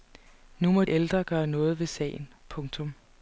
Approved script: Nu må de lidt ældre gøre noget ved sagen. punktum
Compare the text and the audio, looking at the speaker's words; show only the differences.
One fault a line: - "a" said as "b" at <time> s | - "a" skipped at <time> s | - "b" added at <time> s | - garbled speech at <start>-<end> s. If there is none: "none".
- "de lidt" skipped at 0.8 s